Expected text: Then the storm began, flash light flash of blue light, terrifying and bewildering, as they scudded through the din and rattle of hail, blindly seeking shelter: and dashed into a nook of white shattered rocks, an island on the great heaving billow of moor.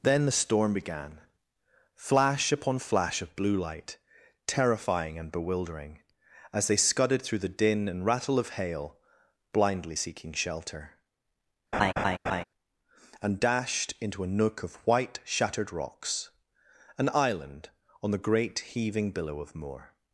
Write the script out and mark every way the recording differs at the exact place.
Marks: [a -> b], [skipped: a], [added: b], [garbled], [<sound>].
Then the storm began, flash [light -> upon] flash of blue light, terrifying and bewildering, as they scudded through the din and rattle of hail, blindly seeking shelter: [laugh] and dashed into a nook of white shattered rocks, an island on the great heaving billow of moor.